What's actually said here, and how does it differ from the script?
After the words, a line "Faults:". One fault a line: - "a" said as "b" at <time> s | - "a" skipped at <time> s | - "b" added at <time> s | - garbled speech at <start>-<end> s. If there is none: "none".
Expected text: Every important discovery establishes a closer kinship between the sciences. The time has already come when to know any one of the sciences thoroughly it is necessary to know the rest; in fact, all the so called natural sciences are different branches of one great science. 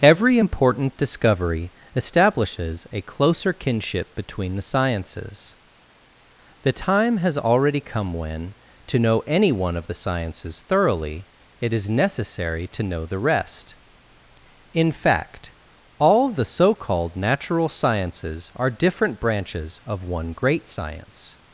Every important discovery establishes a closer kinship between the sciences. The time has already come when to know any one of the sciences thoroughly it is necessary to know the rest; in fact, all the so called natural sciences are different branches of one great science.
Faults:
none